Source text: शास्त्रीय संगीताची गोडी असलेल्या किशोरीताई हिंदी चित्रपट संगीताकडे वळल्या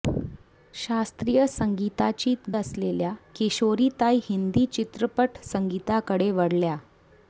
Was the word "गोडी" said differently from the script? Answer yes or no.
yes